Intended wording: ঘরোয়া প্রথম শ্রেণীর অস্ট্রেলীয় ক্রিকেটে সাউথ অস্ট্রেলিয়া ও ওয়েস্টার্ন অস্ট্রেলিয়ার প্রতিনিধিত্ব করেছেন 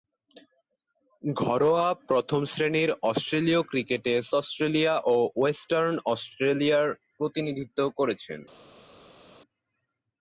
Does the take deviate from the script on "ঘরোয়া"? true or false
false